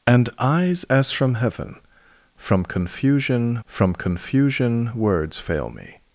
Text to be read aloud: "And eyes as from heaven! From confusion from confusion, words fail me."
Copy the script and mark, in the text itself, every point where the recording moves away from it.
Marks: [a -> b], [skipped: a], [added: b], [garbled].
"And eyes as from heaven! From confusion from confusion, words fail me."